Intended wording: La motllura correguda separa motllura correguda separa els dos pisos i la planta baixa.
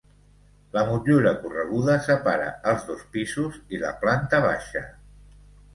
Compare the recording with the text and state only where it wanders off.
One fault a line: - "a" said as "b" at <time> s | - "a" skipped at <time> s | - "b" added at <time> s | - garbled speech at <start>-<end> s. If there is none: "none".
- "motllura correguda separa" skipped at 2.5 s